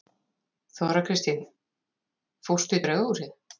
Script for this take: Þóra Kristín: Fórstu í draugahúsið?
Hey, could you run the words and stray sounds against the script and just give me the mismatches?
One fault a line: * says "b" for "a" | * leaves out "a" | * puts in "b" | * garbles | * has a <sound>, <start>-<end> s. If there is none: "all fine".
all fine